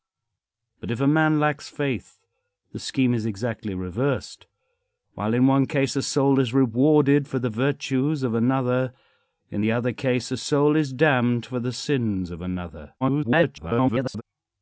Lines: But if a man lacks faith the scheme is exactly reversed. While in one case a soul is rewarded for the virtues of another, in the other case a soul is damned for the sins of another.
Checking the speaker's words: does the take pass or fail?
fail